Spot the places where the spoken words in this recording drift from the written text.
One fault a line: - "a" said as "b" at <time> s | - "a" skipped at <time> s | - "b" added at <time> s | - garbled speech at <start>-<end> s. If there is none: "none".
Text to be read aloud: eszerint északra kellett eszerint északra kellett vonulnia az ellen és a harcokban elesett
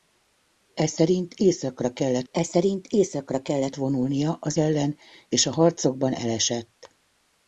none